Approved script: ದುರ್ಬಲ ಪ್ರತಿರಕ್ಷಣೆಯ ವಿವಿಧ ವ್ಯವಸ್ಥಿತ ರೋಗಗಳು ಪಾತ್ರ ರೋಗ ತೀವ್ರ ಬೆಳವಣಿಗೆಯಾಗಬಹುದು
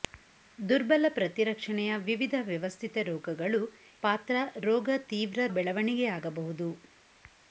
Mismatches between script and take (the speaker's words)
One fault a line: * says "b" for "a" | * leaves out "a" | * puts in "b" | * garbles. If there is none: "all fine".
all fine